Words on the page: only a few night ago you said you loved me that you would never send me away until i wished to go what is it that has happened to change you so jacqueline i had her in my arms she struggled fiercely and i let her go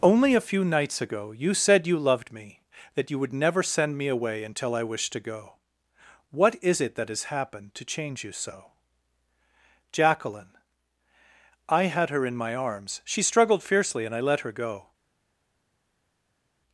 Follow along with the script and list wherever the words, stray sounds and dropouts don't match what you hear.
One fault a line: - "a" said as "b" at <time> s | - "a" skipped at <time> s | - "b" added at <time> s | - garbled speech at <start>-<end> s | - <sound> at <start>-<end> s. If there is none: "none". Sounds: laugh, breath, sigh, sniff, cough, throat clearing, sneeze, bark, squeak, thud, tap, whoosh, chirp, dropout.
- "night" said as "nights" at 0.7 s